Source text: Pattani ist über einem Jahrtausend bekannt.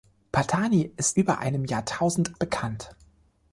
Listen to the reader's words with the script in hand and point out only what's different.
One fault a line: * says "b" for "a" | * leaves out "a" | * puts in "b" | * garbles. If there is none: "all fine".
all fine